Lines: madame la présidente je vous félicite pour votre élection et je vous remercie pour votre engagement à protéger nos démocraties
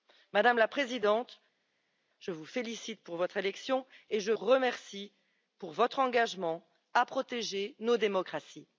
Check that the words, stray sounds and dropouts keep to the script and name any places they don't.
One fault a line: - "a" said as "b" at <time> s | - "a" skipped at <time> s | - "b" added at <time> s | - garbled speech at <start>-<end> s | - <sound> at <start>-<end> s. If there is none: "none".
- "vous" skipped at 4.3 s